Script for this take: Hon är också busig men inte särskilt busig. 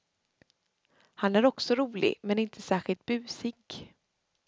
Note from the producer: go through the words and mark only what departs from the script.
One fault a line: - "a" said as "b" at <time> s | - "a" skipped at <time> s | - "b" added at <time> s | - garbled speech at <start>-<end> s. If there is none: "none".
- "Hon" said as "Han" at 1.1 s
- "busig" said as "rolig" at 1.8 s